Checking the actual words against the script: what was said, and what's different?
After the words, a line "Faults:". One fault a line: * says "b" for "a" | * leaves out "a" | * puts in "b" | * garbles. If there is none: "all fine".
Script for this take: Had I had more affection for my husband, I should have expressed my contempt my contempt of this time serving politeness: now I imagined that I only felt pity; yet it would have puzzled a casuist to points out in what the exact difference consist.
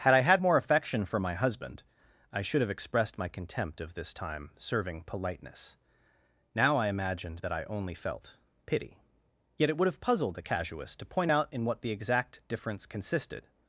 Had I had more affection for my husband, I should have expressed my contempt of this time serving politeness: now I imagined that I only felt pity; yet it would have puzzled a casuist to point out in what the exact difference consisted.
Faults:
* leaves out "my contempt"
* says "point" for "points"
* says "consisted" for "consist"